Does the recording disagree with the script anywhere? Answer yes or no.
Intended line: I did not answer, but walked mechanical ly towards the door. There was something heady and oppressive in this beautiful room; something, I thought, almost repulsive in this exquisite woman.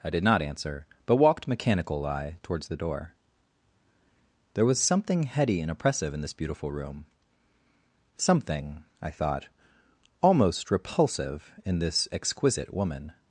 yes